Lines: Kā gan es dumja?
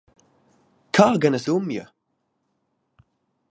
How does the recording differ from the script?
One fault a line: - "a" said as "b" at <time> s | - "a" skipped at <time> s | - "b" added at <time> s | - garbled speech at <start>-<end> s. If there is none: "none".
none